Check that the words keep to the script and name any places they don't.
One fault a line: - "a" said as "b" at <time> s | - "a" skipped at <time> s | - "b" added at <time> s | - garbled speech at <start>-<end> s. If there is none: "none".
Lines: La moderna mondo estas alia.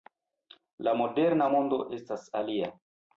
none